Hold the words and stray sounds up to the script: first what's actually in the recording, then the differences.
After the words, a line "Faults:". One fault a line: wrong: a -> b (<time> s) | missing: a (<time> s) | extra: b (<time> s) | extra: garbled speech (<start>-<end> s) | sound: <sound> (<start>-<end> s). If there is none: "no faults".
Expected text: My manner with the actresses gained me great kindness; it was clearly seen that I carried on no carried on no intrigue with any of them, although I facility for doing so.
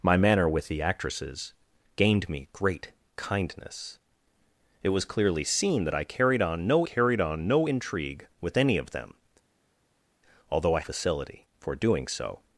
My manner with the actresses gained me great kindness; it was clearly seen that I carried on no carried on no intrigue with any of them, although I facility for doing so.
Faults:
no faults